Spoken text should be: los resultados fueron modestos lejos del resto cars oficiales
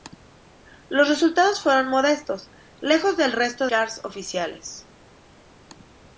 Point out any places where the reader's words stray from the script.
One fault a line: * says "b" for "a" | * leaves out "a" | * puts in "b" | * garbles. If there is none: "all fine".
all fine